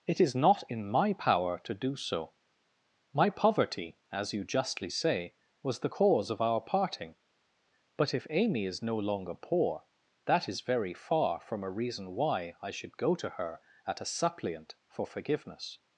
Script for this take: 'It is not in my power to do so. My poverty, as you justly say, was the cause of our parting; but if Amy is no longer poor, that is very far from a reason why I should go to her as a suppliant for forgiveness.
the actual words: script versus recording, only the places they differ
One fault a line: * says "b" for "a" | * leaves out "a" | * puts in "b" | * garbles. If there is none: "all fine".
* says "at" for "as"